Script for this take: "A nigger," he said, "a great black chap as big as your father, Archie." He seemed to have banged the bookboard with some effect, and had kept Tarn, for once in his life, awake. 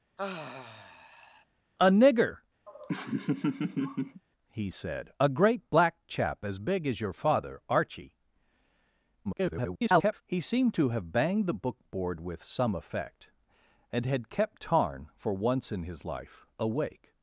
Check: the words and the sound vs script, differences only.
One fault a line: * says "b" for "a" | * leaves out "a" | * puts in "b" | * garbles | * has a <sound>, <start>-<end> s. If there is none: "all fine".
* has a sigh, 0.2-1.5 s
* has a laugh, 2.7-4.2 s
* garbles